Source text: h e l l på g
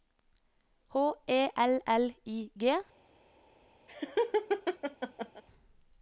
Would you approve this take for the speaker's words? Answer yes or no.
no